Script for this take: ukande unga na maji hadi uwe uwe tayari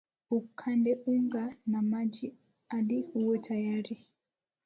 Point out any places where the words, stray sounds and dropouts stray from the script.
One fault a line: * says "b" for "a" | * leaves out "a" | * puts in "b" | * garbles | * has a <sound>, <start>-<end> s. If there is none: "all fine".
* leaves out "uwe"